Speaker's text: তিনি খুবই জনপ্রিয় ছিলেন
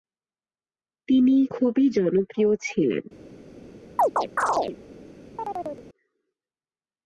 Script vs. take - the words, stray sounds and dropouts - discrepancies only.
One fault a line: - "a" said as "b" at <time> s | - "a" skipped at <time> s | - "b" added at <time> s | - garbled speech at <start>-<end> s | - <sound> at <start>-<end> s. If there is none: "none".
- chirp at 4.0-4.8 s
- chirp at 5.4-5.9 s